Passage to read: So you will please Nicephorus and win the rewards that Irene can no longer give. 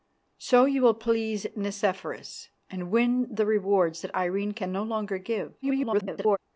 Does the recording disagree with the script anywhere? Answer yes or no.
yes